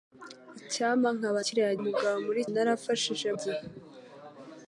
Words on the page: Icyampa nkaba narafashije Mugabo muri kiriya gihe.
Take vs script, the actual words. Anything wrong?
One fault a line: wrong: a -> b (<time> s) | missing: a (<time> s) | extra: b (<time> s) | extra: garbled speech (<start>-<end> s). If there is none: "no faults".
wrong: narafashije -> kiriya (1.4 s)
wrong: kiriya -> narafashije (2.5 s)